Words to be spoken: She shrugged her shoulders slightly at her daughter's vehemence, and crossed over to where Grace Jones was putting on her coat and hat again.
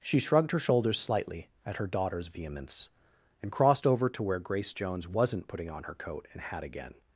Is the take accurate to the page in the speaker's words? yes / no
no